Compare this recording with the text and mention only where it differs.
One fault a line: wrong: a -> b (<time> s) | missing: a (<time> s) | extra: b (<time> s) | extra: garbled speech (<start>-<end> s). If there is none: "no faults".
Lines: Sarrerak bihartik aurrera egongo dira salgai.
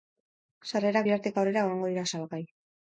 no faults